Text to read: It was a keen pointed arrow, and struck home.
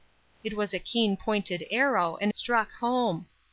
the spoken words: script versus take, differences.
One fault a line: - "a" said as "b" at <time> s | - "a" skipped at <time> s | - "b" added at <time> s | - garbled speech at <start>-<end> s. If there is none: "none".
none